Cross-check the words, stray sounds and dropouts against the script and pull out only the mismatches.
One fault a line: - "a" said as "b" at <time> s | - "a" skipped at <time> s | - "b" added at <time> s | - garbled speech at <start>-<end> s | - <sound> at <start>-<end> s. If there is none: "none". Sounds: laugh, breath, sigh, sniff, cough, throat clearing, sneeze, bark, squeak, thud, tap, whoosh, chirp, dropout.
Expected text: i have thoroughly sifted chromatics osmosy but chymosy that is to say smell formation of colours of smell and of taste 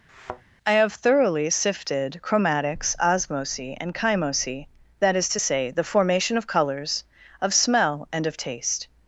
- thud at 0.1-0.4 s
- "but" said as "and" at 3.8 s
- "smell" said as "the" at 5.7 s